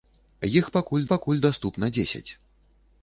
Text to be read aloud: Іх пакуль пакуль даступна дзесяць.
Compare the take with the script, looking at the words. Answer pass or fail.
pass